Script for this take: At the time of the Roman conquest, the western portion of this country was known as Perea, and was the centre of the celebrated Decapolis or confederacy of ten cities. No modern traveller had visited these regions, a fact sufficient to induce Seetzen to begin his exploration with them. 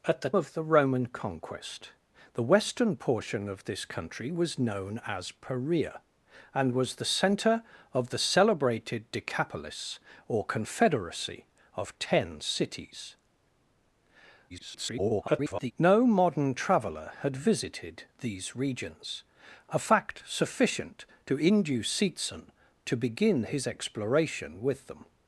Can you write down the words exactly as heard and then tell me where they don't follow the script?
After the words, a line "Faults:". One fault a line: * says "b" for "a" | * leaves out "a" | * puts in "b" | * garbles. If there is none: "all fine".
At the of the Roman conquest, the western portion of this country was known as Perea, and was the centre of the celebrated Decapolis or confederacy of ten cities. [garbled] No modern traveller had visited these regions, a fact sufficient to induce Seetzen to begin his exploration with them.
Faults:
* leaves out "time"
* garbles